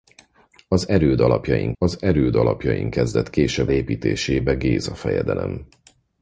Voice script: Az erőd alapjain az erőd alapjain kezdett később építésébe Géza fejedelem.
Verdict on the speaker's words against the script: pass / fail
pass